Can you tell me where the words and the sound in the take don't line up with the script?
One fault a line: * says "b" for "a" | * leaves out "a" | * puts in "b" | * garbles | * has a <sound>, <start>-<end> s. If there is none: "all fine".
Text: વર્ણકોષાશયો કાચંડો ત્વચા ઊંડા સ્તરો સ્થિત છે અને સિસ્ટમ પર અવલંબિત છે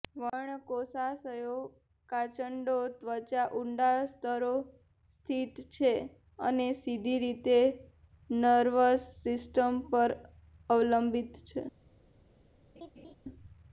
* puts in "સીધી રીતે નર્વસ"
* has a laugh, 12.8-13.1 s